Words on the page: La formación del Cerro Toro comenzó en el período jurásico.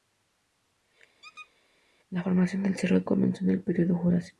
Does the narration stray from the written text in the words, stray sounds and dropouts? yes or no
yes